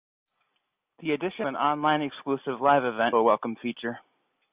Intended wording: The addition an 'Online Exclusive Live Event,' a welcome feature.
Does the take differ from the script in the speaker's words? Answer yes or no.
no